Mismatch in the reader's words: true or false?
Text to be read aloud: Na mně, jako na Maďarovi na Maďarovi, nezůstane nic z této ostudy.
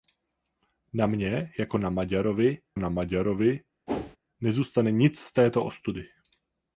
false